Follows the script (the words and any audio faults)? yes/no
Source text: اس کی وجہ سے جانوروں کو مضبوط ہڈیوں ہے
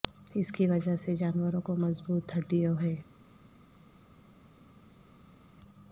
yes